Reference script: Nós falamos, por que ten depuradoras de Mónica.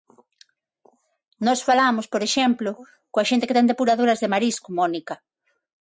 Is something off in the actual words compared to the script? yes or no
yes